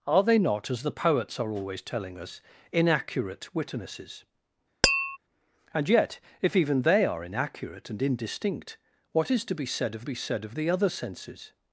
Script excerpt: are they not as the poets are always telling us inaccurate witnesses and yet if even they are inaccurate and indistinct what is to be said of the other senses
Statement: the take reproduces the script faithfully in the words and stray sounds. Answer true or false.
false